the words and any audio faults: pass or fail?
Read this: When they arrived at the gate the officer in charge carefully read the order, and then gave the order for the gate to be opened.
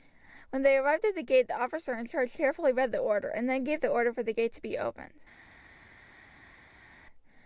pass